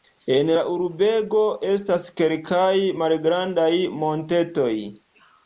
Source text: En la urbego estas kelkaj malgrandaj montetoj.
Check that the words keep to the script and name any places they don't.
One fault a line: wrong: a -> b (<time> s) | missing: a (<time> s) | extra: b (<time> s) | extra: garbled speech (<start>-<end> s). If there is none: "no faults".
no faults